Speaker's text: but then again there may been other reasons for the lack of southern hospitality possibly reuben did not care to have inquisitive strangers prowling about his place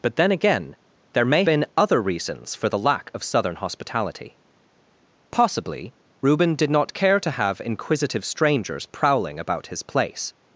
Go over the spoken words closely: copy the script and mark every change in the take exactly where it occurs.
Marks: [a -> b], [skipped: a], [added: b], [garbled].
but then again there may been other reasons for the lack of southern hospitality possibly reuben did not care to have inquisitive strangers prowling about his place